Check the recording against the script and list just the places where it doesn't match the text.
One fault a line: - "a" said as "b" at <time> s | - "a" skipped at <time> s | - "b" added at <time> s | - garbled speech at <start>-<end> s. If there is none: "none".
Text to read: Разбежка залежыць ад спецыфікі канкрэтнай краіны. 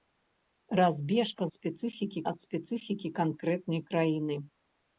- "залежыць" said as "спецыфікі" at 1.6 s